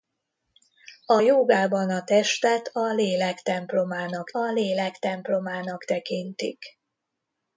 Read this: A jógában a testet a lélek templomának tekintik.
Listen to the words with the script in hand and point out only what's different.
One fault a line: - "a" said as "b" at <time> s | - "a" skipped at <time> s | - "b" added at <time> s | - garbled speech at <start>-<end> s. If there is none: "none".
- "a lélek templomának" added at 4.3 s